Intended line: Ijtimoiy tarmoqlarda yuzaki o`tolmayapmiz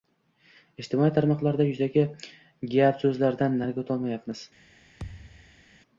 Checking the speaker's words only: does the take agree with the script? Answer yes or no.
no